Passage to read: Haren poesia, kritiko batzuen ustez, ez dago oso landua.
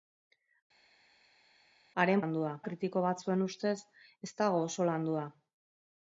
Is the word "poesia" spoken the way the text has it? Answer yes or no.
no